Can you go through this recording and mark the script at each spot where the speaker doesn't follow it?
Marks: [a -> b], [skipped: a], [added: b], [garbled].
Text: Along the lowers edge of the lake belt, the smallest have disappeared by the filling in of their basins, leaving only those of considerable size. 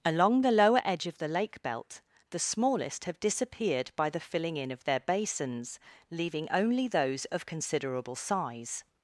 Along the [lowers -> lower] edge of the lake belt, the smallest have disappeared by the filling in of their basins, leaving only those of considerable size.